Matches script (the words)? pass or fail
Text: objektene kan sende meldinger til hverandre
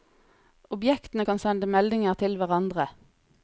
pass